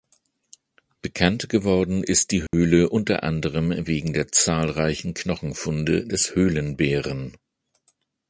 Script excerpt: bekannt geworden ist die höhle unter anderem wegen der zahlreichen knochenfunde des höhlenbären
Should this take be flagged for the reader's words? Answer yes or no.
no